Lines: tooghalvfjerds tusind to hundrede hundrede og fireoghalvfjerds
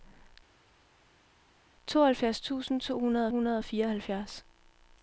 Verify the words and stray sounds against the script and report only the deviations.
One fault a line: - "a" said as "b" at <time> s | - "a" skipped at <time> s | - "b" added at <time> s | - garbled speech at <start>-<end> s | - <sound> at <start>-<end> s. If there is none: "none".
none